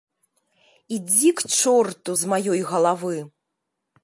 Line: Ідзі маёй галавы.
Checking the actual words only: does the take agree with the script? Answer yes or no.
no